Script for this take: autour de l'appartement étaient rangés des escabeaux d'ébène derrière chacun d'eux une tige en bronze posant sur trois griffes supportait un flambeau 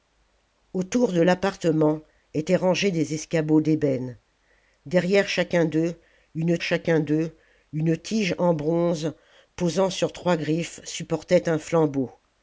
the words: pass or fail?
fail